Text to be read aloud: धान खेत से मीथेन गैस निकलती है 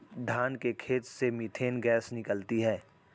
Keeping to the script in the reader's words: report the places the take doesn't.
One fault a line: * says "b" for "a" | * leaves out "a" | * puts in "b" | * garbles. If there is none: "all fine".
* puts in "के"